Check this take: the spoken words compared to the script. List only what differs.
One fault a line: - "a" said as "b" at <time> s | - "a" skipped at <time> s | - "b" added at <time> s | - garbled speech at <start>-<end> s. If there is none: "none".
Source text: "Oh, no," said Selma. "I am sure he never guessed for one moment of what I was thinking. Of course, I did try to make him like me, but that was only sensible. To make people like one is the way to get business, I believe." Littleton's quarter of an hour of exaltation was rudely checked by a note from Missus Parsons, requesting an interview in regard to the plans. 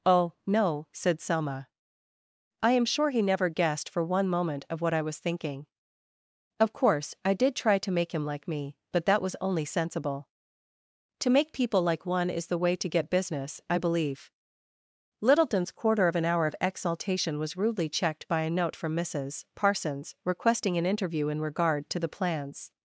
none